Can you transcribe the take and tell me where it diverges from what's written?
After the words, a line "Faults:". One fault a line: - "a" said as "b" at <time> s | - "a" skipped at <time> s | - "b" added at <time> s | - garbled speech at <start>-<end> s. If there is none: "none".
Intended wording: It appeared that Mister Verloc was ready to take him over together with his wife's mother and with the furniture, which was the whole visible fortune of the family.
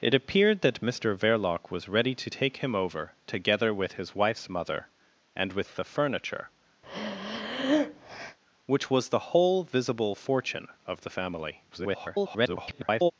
It appeared that Mister Verloc was ready to take him over together with his wife's mother and with the furniture, which was the whole visible fortune of the family. [garbled]
Faults:
- garbled speech at 11.7-13.1 s